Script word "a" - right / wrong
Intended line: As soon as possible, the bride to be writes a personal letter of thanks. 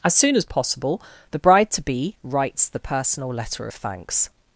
wrong